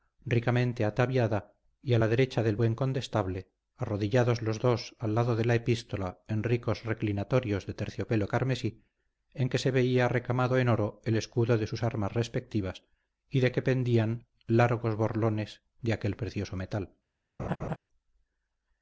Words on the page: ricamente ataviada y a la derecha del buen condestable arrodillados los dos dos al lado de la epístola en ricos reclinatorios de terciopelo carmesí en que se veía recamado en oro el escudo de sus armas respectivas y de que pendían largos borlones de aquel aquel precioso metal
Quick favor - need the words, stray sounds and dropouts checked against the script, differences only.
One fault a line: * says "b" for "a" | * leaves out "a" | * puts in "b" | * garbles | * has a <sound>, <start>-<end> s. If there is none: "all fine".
* leaves out "dos"
* leaves out "aquel"
* has a laugh, 17.4-17.8 s